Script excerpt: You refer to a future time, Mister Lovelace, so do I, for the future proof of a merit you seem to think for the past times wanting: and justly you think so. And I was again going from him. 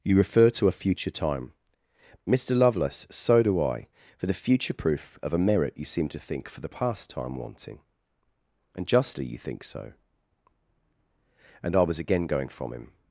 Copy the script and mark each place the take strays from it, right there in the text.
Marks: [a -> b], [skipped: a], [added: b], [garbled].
You refer to a future time, Mister Lovelace, so do I, for the future proof of a merit you seem to think for the past [times -> time] wanting: and justly you think so. And I was again going from him.